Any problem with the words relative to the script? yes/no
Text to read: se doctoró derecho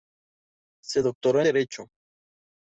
no